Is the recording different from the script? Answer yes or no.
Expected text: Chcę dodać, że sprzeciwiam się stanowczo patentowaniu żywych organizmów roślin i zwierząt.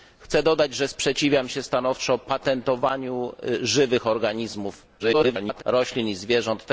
yes